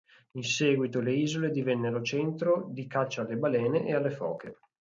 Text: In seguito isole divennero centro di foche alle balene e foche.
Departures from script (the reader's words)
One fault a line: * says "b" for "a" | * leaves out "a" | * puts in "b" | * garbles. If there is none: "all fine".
* puts in "le"
* says "caccia" for "foche"
* puts in "alle"